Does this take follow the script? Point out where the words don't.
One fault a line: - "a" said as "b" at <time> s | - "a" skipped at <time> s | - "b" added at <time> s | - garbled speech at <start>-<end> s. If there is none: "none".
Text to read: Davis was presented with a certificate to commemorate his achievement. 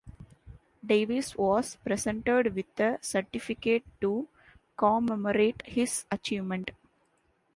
none